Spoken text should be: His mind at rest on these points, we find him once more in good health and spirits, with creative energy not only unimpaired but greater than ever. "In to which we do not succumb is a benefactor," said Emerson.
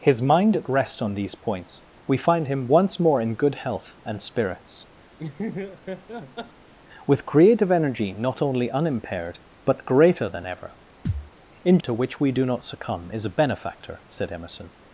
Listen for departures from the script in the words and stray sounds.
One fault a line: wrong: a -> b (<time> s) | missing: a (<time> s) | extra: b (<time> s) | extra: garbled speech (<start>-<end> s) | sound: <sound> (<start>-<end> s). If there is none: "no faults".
sound: laugh (5.2-6.7 s)
sound: thud (11.1-11.3 s)